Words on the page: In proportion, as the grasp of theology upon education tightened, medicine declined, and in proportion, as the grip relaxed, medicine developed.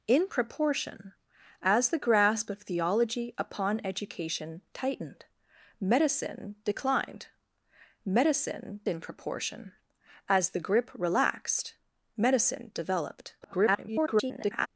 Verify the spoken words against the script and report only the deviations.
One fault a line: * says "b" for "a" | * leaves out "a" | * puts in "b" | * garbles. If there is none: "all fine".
* says "medicine" for "and"
* garbles